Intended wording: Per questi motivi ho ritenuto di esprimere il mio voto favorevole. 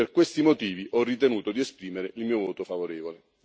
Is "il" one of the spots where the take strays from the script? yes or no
no